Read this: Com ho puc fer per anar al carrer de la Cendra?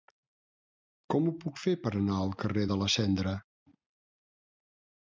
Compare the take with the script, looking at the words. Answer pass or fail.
pass